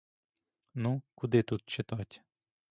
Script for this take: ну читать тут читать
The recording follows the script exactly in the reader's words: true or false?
false